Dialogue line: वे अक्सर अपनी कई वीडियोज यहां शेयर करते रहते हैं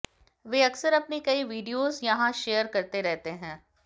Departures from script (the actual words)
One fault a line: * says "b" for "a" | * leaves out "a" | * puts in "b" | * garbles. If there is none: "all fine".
all fine